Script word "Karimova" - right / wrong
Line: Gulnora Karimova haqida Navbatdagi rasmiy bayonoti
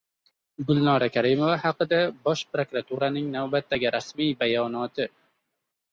right